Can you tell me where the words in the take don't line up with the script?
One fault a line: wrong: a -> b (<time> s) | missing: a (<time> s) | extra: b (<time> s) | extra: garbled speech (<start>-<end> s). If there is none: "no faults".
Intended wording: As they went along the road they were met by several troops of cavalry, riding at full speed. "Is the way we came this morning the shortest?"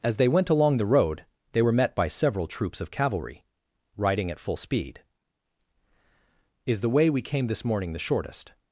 no faults